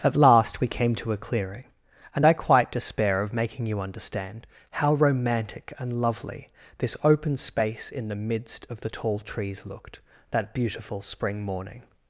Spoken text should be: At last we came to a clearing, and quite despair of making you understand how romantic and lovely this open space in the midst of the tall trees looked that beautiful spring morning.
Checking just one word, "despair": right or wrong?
right